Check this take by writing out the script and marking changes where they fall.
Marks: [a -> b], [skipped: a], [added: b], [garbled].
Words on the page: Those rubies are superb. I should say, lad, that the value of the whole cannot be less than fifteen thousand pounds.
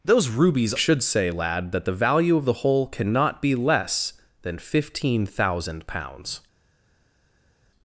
Those rubies [skipped: are superb. I] should say, lad, that the value of the whole cannot be less than fifteen thousand pounds.